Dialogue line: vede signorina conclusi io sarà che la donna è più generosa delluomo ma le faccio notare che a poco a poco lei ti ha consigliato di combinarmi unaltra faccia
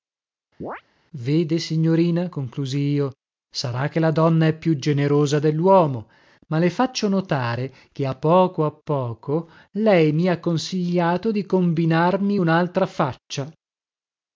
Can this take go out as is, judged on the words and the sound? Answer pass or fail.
fail